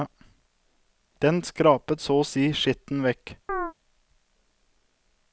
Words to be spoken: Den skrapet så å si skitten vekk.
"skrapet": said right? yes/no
yes